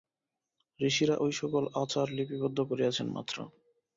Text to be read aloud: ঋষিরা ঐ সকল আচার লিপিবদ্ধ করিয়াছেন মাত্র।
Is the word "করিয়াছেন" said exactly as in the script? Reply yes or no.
yes